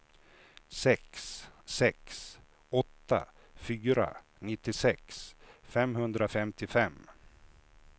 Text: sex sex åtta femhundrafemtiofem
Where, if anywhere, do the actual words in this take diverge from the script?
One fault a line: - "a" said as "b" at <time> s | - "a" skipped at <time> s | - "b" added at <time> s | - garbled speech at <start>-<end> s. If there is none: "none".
- "fyra nittiosex" added at 3.5 s